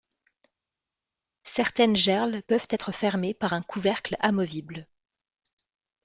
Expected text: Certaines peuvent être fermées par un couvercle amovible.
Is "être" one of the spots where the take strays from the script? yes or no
no